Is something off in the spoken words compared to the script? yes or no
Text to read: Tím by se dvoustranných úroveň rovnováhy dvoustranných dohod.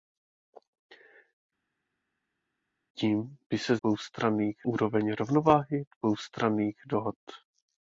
no